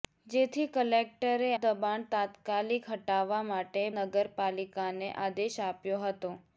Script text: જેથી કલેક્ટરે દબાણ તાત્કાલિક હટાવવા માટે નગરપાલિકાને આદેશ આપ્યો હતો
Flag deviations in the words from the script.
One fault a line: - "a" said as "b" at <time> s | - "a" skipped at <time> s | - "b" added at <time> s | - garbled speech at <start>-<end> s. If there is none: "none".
none